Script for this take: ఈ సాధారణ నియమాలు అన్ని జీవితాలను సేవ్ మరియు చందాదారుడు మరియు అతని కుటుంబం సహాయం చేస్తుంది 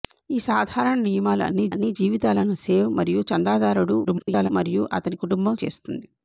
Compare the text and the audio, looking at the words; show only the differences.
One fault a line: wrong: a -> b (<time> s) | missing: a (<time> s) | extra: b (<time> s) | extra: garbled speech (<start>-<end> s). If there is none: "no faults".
extra: అన్ని (1.7 s)
extra: garbled speech (4.0-4.5 s)
missing: సహాయం (5.6 s)